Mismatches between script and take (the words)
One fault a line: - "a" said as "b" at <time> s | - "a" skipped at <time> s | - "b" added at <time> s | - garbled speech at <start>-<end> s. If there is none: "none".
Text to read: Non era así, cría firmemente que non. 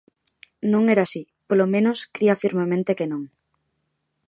- "polo menos" added at 1.5 s